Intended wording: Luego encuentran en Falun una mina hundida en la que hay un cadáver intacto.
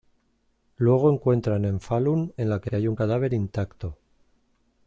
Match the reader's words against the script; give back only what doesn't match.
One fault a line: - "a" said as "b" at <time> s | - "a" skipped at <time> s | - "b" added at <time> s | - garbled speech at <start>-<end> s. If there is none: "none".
- "una mina hundida" skipped at 2.3 s
- "que" added at 2.6 s